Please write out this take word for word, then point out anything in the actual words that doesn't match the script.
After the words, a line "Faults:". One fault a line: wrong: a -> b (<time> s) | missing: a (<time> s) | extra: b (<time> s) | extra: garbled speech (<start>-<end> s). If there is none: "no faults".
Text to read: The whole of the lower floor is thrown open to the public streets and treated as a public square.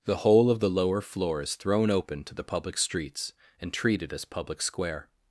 The whole of the lower floor is thrown open to the public streets and treated as public square.
Faults:
missing: a (4.2 s)